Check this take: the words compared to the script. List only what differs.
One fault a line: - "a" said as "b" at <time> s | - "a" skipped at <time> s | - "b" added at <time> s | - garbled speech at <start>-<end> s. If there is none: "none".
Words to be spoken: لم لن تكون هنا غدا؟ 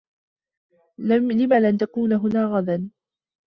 none